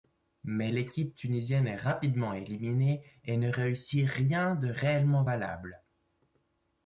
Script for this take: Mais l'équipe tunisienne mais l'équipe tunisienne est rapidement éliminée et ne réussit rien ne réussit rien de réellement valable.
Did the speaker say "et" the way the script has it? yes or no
yes